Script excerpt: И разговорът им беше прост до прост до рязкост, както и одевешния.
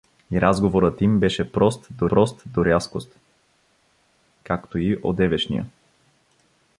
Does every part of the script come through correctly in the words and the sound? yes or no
yes